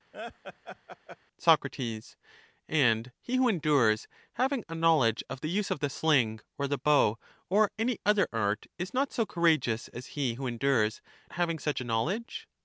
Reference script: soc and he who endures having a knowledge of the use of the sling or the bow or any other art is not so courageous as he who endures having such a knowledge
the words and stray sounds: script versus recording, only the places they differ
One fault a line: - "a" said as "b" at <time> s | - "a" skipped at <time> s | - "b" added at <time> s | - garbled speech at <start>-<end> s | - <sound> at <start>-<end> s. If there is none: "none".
- laugh at 0.1-1.2 s